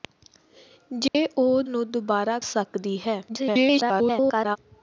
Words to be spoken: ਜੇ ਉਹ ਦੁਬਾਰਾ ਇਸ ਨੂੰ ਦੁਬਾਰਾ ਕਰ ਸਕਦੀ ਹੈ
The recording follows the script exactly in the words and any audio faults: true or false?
false